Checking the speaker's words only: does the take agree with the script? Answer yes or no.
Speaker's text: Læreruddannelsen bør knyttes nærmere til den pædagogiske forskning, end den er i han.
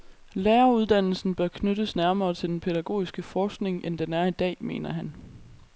no